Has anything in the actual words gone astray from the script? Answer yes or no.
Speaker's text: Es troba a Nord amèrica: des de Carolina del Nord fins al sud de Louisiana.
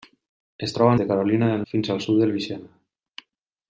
yes